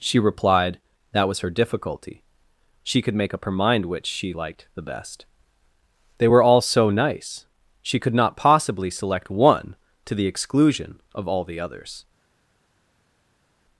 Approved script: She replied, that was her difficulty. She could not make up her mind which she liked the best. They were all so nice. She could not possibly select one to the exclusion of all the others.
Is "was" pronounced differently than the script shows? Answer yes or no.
no